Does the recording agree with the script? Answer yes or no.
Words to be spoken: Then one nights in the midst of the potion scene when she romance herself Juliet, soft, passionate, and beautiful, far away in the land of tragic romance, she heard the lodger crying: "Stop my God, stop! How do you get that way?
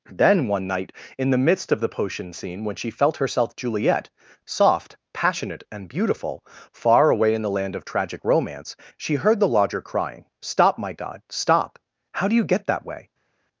no